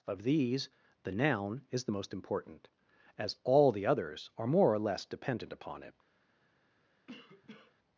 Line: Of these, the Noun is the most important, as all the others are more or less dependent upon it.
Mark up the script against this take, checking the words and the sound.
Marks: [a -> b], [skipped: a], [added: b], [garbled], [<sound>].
Of these, the Noun is the most important, as all the others are more or less dependent upon it. [cough]